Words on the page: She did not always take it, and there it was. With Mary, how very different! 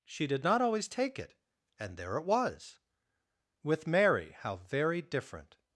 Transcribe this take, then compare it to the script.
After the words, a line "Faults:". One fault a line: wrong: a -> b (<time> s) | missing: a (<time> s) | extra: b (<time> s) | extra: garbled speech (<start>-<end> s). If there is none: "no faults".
She did not always take it, and there it was. With Mary, how very different!
Faults:
no faults